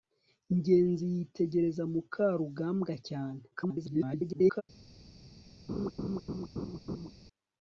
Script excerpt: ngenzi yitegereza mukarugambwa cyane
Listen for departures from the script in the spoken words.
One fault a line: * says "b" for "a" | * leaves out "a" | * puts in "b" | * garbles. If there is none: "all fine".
* garbles